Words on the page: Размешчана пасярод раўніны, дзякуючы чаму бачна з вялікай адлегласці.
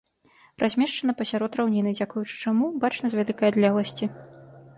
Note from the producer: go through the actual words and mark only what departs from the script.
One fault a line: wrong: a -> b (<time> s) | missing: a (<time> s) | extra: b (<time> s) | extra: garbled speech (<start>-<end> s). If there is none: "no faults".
no faults